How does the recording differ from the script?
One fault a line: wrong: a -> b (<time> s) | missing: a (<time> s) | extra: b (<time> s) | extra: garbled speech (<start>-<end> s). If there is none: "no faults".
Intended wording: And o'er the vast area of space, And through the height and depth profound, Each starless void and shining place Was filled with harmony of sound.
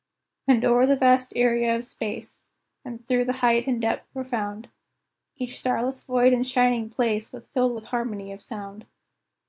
no faults